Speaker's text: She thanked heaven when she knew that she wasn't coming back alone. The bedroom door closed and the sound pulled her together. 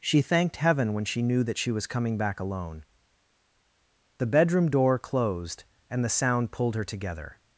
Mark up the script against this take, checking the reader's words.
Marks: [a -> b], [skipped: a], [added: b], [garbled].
She thanked heaven when she knew that she [wasn't -> was] coming back alone. The bedroom door closed and the sound pulled her together.